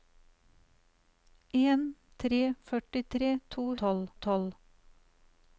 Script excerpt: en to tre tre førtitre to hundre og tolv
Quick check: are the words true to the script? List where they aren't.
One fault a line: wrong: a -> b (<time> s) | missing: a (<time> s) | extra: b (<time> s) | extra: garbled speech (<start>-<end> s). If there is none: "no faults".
missing: to (1.8 s)
missing: tre (2.4 s)
wrong: hundre -> tolv (3.8 s)